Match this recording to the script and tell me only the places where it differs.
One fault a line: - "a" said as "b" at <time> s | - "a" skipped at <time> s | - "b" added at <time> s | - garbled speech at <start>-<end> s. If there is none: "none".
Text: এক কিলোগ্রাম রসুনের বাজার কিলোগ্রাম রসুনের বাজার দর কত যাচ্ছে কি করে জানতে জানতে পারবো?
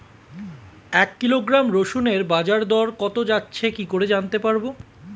- "কিলোগ্রাম রসুনের বাজার" skipped at 2.6 s
- "জানতে" skipped at 4.4 s